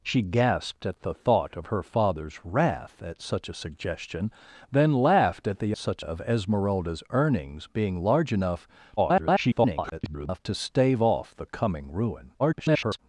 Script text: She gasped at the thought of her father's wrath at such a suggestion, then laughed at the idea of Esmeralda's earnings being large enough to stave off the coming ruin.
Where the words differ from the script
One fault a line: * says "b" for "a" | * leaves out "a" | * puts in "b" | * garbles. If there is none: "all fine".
* says "such" for "idea"
* garbles
* garbles